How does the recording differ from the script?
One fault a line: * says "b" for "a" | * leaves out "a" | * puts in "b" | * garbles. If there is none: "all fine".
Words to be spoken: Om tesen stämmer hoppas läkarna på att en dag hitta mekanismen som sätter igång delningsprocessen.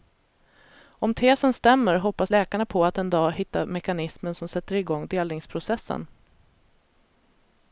all fine